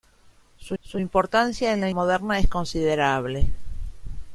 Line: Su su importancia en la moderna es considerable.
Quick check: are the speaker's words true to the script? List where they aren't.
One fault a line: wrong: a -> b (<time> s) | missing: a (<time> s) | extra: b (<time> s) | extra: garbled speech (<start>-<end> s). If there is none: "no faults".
no faults